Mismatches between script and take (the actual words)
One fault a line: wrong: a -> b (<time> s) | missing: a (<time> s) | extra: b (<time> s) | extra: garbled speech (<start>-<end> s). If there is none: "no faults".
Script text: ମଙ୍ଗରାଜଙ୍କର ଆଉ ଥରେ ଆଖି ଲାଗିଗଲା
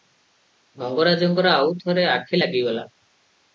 no faults